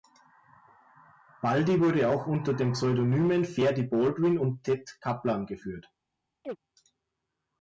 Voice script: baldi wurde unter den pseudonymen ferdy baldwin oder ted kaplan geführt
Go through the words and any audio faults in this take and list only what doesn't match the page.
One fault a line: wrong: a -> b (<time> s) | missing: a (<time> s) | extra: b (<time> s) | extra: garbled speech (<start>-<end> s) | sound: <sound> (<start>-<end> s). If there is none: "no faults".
extra: auch (2.1 s)
wrong: oder -> und (4.4 s)
sound: chirp (6.4-6.6 s)